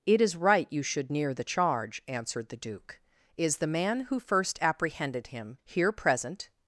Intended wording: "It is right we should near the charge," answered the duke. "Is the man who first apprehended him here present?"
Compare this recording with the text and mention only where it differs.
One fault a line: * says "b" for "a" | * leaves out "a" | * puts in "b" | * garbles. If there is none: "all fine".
* says "you" for "we"